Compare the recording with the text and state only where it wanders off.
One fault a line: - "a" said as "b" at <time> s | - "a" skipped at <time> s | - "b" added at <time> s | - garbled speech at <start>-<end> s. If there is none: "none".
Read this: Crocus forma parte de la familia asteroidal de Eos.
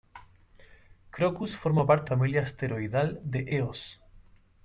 - "de la" skipped at 2.1 s